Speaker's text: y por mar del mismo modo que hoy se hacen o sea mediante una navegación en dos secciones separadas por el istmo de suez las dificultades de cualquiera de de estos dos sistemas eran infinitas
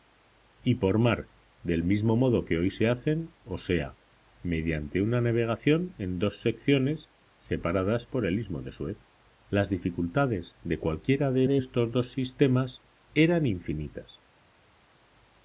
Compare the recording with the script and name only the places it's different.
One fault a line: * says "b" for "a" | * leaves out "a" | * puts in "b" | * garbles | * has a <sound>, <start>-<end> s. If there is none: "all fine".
all fine